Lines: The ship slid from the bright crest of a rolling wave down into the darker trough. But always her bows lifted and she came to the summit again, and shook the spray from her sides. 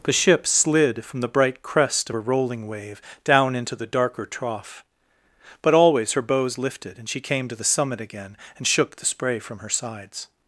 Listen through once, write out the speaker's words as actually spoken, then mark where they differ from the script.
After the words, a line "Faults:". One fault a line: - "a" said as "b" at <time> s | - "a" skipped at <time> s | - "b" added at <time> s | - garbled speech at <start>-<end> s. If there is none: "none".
The ship slid from the bright crest of a rolling wave down into the darker trough. But always her bows lifted and she came to the summit again, and shook the spray from her sides.
Faults:
none